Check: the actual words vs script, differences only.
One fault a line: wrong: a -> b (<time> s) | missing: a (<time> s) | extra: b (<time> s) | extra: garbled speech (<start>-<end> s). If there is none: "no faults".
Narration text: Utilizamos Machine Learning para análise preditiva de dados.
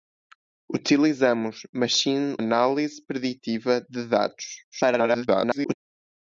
missing: Learning para (2.4 s)
extra: garbled speech (4.7-5.7 s)